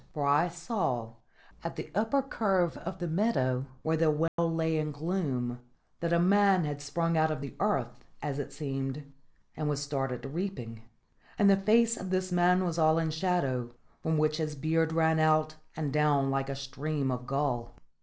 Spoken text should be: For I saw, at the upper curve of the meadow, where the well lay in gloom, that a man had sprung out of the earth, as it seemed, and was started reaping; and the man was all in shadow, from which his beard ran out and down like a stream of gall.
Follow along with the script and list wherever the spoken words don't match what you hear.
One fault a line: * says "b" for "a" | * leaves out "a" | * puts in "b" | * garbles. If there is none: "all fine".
* puts in "face of this"